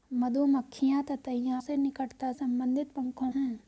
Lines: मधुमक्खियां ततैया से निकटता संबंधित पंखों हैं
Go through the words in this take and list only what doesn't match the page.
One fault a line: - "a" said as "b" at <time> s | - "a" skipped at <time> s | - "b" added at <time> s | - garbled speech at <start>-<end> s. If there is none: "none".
none